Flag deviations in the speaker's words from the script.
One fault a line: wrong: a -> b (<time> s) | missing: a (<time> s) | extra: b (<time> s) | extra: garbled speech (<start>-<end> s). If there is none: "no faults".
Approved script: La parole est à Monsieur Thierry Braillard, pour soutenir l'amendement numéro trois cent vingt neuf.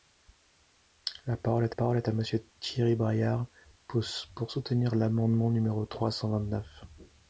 extra: parole est (1.7 s)